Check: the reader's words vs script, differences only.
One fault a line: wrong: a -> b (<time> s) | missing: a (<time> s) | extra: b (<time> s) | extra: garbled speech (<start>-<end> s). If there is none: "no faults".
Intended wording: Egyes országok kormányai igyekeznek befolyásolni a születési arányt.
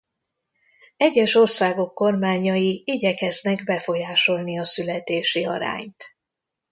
no faults